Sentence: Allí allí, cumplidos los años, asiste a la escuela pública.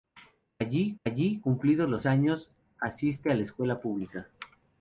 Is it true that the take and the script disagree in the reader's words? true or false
false